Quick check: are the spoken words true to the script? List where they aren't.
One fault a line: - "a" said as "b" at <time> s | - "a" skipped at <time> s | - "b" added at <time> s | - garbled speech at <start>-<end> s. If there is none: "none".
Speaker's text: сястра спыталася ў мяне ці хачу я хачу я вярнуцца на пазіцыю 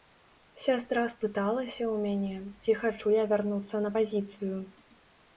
- "хачу я" skipped at 3.2 s